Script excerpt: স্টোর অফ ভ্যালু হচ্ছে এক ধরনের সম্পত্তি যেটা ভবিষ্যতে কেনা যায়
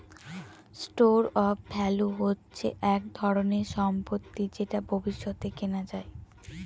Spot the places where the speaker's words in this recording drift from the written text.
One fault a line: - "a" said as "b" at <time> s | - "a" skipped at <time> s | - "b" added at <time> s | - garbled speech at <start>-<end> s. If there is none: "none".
none